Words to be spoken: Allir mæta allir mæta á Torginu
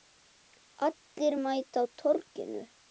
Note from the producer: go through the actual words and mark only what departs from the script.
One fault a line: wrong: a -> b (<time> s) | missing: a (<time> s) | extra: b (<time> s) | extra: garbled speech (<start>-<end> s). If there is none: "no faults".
missing: allir mæta (1.8 s)